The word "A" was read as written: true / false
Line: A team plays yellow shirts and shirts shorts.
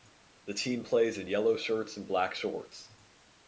false